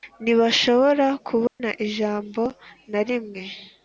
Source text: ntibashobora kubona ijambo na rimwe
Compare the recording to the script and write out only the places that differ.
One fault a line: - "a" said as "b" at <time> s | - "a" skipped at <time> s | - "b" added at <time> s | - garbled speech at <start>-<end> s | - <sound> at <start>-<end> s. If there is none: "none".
- dropout at 1.5-1.6 s